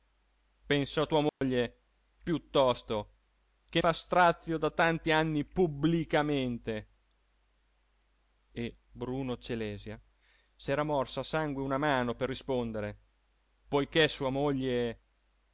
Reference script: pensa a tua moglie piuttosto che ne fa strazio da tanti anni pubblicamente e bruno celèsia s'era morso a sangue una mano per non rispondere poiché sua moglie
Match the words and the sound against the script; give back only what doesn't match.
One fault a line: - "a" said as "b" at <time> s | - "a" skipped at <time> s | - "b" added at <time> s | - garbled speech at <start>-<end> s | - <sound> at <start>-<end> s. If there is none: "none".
- dropout at 1.3-1.4 s
- "ne" skipped at 3.8 s
- "non" skipped at 12.3 s